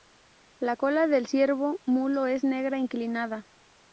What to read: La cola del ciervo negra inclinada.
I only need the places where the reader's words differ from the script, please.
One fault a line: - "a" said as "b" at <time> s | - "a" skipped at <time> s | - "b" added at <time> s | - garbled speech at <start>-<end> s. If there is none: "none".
- "mulo es" added at 1.9 s